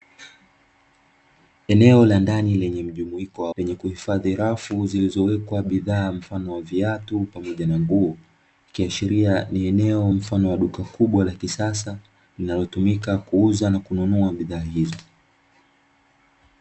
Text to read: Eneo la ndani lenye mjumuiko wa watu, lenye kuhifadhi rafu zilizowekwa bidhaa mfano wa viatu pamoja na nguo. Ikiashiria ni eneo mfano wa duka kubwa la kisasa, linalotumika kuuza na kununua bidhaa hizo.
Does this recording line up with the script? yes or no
no